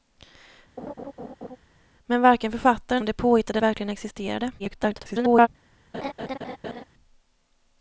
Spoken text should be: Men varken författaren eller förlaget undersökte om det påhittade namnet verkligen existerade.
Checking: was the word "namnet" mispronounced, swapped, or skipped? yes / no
yes